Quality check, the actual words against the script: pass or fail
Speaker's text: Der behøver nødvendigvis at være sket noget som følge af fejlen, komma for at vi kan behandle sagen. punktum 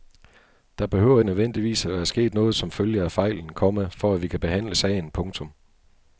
pass